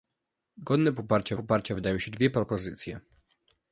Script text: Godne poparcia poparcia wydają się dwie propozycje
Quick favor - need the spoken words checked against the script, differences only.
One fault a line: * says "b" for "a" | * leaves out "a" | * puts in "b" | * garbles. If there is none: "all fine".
all fine